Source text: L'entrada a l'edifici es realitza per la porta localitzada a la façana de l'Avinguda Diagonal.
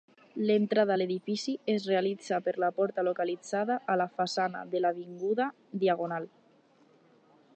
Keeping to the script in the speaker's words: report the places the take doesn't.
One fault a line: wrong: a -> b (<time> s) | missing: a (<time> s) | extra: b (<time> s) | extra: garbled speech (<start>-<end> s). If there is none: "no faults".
no faults